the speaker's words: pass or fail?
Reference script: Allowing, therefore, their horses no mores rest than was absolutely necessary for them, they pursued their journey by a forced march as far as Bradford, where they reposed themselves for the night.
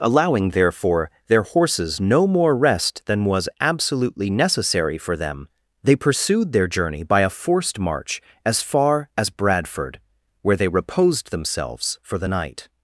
fail